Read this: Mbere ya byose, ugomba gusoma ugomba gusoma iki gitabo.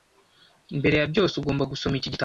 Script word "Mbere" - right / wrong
right